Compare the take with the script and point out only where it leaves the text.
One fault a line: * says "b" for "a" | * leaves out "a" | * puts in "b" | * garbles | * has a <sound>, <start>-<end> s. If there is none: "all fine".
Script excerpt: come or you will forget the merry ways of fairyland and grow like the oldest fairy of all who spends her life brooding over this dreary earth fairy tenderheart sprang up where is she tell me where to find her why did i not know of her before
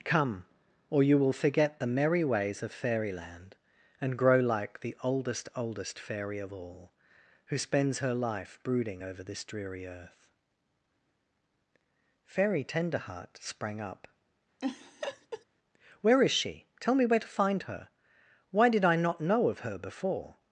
* puts in "oldest"
* has a laugh, 14.6-15.5 s